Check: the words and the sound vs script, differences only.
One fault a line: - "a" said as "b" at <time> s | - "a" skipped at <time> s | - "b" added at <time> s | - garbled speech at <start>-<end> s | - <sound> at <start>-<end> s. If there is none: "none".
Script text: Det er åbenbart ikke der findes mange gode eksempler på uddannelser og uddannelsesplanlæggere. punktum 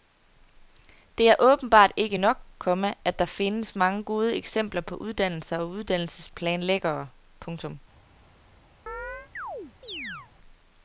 - "nok komma at" added at 2.1 s
- chirp at 8.9-10.3 s